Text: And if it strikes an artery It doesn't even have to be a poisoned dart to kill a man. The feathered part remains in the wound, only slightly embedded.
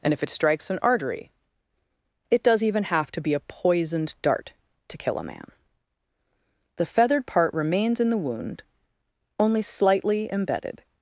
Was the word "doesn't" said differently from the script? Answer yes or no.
yes